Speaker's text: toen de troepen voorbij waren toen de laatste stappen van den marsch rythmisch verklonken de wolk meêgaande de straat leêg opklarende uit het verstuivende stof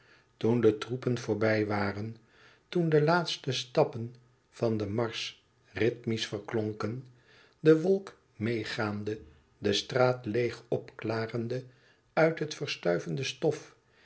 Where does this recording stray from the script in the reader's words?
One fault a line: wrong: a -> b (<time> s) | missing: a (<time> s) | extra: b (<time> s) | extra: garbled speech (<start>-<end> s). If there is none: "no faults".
no faults